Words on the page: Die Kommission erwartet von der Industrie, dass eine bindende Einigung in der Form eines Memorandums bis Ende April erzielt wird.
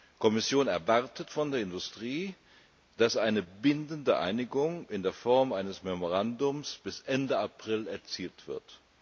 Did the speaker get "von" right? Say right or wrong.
right